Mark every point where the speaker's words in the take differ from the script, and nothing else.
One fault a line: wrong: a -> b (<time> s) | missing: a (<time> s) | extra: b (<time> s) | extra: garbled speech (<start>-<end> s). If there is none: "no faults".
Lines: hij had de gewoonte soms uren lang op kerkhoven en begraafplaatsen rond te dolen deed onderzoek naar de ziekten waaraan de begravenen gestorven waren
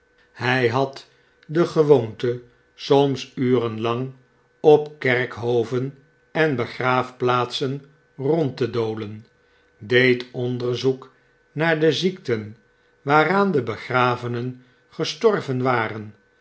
no faults